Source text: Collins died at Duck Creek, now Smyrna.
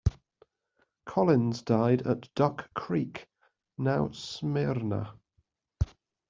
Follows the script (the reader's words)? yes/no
yes